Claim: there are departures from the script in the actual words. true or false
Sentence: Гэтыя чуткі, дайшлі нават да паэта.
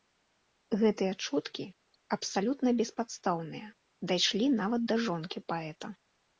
true